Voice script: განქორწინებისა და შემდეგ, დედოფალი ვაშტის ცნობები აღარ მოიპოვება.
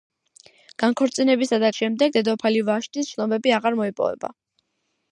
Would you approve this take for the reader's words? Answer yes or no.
yes